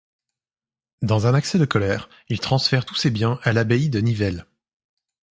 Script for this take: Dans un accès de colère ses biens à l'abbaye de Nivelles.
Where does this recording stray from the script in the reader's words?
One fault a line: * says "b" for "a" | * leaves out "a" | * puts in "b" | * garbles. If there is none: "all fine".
* puts in "il transfère tous"